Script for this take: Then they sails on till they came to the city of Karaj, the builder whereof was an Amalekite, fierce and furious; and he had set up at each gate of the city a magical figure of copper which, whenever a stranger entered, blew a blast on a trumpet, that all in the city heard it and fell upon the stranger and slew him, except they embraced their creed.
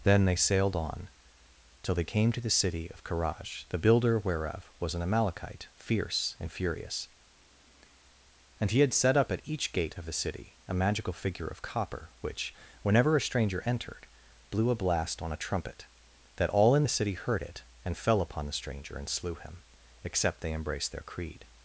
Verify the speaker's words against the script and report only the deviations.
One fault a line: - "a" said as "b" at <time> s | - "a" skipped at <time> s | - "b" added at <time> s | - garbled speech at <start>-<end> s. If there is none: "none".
- "sails" said as "sailed" at 0.3 s